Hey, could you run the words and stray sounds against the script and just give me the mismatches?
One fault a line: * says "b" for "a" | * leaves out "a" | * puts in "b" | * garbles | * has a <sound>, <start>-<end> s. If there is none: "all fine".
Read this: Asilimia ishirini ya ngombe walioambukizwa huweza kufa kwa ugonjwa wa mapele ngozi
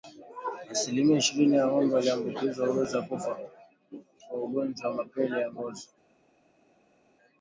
* puts in "ya"